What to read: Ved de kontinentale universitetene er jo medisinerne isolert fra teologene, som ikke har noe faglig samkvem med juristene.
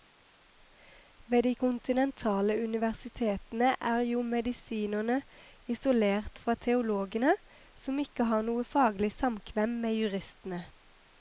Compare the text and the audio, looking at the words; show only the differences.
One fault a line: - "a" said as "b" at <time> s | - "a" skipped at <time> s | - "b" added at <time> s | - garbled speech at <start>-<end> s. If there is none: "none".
none